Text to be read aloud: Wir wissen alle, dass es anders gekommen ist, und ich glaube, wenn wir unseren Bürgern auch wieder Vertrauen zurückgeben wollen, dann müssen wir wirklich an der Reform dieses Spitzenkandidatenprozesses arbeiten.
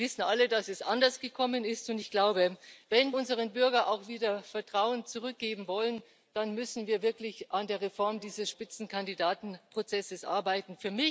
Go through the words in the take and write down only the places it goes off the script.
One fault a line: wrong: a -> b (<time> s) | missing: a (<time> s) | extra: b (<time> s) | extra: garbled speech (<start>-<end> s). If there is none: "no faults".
missing: wir (3.1 s)